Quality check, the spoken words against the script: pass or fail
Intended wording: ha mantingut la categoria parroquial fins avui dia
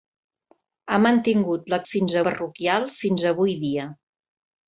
fail